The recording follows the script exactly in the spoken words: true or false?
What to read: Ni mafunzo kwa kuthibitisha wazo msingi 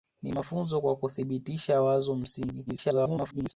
false